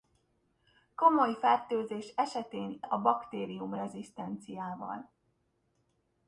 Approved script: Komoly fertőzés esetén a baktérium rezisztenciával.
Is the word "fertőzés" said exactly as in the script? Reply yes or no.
yes